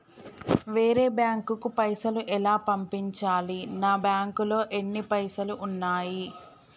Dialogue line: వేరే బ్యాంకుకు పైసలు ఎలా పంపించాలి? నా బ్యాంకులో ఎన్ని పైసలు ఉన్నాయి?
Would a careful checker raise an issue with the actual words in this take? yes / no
no